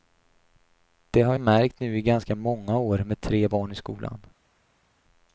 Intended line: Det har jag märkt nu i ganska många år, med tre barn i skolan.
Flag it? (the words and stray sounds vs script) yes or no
yes